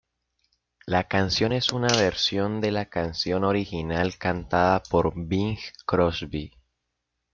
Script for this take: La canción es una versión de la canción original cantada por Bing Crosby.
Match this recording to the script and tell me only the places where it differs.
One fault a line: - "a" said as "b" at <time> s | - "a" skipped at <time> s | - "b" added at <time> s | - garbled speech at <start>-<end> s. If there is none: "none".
none